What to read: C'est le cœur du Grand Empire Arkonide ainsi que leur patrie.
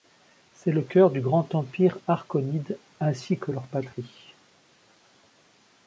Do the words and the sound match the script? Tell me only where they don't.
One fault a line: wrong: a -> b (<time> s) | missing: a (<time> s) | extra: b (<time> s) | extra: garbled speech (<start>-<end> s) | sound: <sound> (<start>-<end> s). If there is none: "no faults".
no faults